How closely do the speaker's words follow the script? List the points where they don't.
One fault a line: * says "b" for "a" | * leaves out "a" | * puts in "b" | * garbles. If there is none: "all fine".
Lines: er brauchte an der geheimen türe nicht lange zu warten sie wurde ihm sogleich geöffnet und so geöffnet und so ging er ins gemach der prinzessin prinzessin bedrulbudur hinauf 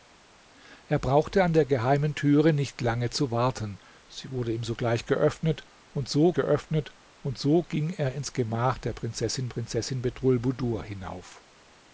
all fine